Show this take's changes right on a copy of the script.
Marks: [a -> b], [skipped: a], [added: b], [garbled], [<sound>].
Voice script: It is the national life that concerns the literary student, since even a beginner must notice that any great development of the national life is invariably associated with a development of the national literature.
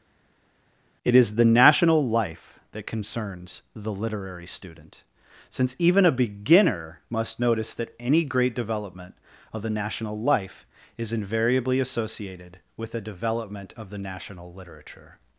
It is the national life that concerns the literary student, since even a beginner must notice that any great development of the national life is invariably associated with a development of the national literature.